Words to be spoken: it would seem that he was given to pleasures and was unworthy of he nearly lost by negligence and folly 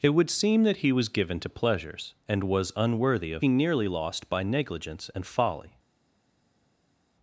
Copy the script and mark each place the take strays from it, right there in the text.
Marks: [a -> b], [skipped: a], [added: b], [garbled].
it would seem that he was given to pleasures and was unworthy of he nearly lost by negligence and folly